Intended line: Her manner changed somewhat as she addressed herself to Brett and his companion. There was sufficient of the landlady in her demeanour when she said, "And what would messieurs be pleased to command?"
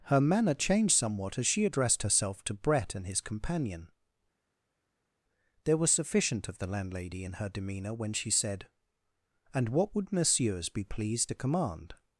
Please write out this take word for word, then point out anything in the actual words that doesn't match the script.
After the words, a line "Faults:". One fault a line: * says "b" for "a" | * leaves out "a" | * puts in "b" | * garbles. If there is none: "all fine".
Her manner changed somewhat as she addressed herself to Brett and his companion. There was sufficient of the landlady in her demeanour when she said, "And what would messieurs be pleased to command?"
Faults:
all fine